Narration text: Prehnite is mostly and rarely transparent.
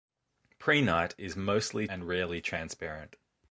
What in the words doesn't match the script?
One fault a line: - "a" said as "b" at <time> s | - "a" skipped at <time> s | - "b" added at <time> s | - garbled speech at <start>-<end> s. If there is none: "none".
none